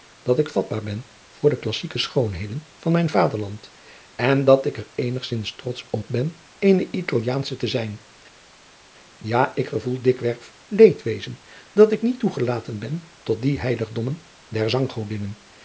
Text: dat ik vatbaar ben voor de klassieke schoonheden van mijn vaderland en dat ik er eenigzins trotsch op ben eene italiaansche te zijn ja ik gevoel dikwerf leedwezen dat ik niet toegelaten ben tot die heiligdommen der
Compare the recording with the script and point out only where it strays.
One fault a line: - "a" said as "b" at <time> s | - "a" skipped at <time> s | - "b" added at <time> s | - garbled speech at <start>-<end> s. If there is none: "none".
none